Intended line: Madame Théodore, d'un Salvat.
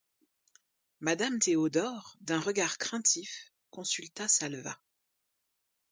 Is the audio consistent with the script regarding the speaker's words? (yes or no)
no